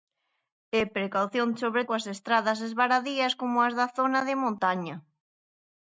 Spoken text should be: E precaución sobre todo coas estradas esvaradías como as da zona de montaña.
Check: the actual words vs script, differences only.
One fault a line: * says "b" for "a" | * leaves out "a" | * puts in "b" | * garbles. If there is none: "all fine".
* leaves out "todo"